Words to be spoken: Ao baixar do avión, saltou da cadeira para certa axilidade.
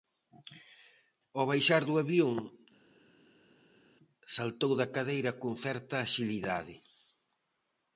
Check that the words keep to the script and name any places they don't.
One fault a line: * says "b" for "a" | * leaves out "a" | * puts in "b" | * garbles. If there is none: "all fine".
* says "con" for "para"